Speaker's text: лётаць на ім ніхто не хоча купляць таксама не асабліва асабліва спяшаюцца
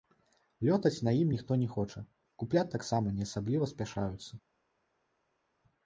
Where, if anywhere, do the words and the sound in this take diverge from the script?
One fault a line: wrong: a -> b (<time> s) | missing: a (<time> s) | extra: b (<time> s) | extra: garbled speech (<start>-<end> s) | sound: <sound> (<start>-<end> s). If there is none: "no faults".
missing: асабліва (3.7 s)